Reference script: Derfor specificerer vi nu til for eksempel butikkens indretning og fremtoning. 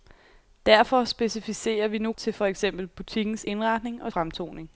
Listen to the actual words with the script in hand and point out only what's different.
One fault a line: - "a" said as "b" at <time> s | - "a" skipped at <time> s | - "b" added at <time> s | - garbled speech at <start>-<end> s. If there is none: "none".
none